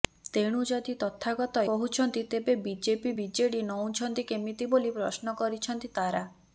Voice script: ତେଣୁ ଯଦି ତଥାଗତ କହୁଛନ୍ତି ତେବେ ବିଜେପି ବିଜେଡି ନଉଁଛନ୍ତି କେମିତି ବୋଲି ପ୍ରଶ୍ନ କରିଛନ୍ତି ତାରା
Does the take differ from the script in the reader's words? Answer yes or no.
no